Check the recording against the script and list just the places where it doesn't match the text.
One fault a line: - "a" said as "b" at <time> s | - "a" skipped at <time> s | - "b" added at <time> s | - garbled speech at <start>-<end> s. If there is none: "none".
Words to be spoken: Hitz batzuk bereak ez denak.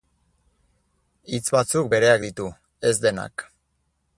- "ditu" added at 2.3 s